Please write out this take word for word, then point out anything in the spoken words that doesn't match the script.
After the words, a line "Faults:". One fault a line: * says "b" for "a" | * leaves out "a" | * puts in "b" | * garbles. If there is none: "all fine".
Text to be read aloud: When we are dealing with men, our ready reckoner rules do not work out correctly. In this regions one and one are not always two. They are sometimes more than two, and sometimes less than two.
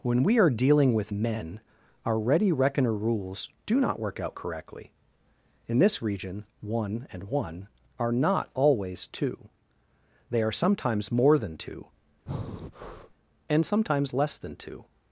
When we are dealing with men, our ready reckoner rules do not work out correctly. In this region one and one are not always two. They are sometimes more than two, and sometimes less than two.
Faults:
* says "region" for "regions"